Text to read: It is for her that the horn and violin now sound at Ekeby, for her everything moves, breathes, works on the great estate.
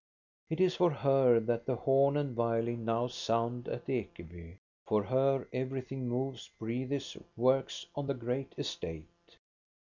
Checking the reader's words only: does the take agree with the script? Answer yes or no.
yes